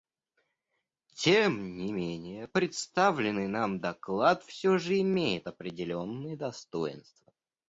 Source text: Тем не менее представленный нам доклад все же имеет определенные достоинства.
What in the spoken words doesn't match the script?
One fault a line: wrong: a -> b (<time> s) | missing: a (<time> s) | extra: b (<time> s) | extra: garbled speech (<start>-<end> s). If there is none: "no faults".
no faults